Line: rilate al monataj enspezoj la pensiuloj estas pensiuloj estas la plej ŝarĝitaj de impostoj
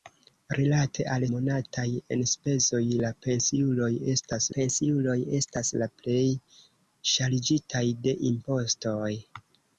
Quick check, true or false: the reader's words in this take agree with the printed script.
true